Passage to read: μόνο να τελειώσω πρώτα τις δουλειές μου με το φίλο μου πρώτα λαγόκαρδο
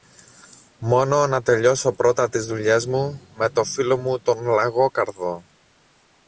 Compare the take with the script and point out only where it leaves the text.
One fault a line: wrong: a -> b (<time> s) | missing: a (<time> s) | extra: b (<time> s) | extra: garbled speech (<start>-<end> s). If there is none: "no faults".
wrong: πρώτα -> τον (4.2 s)